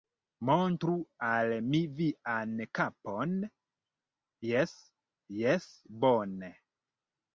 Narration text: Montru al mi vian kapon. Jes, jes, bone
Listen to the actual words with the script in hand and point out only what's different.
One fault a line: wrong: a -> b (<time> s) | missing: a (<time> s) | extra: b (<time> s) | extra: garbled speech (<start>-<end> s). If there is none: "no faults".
no faults